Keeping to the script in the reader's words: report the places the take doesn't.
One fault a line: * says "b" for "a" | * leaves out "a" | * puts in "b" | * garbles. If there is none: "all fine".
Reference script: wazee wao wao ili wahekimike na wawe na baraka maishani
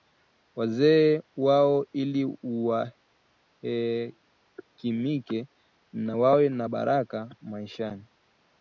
* leaves out "wao"